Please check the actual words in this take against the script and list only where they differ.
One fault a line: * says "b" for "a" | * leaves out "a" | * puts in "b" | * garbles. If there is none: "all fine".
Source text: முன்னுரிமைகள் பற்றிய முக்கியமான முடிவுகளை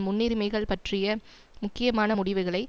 all fine